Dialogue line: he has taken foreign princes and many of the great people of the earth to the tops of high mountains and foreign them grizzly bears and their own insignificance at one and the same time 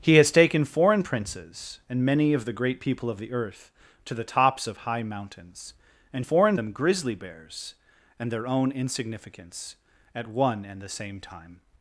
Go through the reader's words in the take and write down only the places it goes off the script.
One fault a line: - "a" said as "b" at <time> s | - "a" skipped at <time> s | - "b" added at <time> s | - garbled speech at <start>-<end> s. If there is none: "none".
none